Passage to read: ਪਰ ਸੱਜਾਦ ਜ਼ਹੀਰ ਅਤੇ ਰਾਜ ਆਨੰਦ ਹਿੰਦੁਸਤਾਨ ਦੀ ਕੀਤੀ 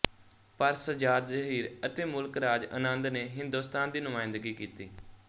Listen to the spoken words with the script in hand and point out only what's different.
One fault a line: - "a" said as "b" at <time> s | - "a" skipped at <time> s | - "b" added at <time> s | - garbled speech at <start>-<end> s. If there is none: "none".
- "ਮੁਲਕ" added at 2.0 s
- "ਨੇ" added at 3.1 s
- "ਨੁਮਾਇੰਦਗੀ" added at 4.0 s